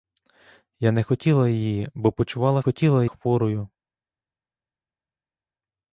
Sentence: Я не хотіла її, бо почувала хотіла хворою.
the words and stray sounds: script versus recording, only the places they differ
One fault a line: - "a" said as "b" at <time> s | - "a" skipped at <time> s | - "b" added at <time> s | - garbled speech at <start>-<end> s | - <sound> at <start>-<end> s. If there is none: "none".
none